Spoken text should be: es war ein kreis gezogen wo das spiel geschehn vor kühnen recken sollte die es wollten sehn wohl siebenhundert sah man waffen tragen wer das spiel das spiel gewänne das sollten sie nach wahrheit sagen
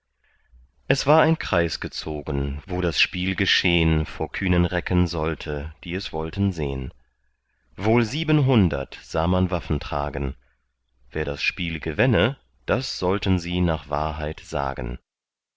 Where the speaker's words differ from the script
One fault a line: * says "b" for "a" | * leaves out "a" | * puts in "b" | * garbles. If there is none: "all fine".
* leaves out "das spiel"